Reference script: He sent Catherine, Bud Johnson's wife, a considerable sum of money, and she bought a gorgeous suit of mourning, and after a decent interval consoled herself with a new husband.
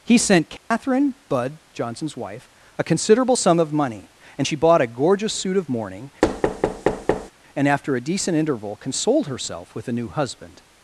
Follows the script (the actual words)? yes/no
yes